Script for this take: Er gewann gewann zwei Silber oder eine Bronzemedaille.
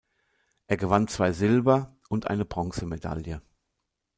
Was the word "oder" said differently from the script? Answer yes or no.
yes